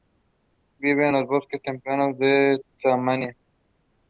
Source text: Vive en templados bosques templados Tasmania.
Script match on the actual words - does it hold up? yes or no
no